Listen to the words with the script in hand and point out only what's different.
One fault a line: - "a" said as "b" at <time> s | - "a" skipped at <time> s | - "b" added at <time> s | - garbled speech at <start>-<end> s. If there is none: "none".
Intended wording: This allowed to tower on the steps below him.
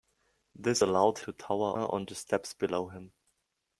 none